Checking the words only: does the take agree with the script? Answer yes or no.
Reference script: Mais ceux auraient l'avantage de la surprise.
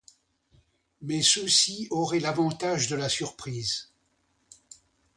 no